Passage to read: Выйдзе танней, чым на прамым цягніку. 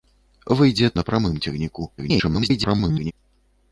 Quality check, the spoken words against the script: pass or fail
fail